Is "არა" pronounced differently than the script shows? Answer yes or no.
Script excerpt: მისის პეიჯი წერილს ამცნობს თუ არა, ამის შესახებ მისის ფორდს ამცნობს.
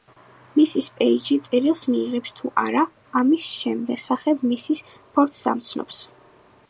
no